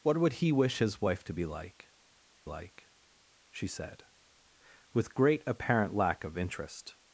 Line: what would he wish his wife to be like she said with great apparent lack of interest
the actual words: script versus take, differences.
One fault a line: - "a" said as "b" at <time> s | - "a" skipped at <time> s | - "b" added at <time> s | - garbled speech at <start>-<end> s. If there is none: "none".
- "like" added at 2.4 s